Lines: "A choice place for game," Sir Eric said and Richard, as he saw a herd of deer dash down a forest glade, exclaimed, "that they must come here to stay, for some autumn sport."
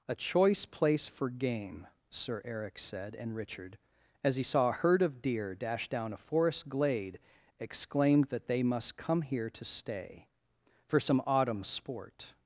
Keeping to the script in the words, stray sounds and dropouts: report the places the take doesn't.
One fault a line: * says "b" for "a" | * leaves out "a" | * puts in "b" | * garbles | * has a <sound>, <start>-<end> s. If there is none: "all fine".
all fine